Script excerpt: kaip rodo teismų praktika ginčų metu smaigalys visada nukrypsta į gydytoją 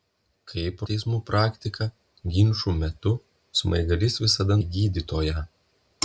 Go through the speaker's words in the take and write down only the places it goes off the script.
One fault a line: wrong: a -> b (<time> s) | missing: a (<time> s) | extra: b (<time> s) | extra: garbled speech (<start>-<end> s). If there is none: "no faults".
missing: rodo (0.8 s)
missing: nukrypsta (4.6 s)